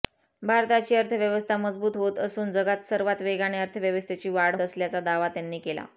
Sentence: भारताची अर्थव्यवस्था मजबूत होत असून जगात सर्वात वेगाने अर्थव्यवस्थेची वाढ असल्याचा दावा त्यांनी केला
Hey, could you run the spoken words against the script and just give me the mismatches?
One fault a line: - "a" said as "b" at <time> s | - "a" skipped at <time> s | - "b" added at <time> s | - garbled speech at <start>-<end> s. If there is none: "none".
none